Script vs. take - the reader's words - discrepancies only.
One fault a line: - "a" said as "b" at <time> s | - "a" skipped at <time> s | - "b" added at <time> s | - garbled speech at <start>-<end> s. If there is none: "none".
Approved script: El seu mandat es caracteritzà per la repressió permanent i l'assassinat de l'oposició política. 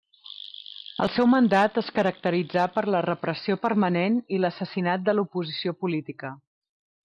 none